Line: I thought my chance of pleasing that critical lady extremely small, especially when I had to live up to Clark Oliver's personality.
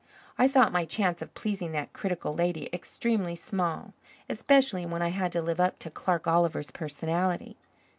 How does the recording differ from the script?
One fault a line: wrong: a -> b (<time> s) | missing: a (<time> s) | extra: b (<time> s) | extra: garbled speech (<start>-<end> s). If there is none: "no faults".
no faults